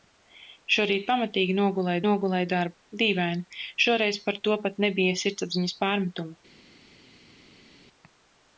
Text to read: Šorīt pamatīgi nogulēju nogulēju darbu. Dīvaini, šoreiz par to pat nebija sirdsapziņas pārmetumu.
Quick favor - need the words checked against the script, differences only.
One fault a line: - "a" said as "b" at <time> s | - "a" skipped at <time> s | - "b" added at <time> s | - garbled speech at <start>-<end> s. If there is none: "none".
none